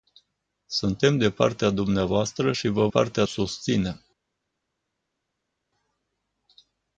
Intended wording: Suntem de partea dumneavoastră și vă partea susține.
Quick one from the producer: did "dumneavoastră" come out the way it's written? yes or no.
yes